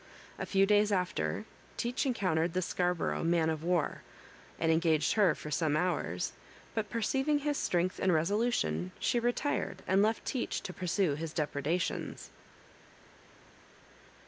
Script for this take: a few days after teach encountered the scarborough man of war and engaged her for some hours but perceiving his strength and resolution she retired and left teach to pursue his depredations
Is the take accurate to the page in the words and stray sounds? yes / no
yes